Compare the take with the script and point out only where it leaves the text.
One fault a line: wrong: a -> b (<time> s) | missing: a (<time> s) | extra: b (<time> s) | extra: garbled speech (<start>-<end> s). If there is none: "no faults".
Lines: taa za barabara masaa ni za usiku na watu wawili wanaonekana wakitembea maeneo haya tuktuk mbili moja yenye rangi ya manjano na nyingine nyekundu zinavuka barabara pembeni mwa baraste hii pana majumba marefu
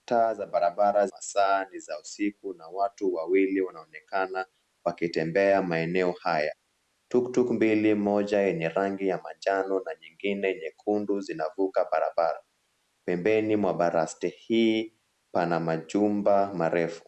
no faults